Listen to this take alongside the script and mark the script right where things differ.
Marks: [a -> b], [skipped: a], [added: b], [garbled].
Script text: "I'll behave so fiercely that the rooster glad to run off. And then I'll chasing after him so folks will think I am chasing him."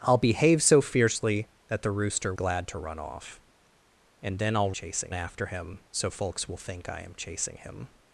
"I'll behave so fiercely that the rooster glad to run off. And then I'll chasing after him so folks will think I am chasing him."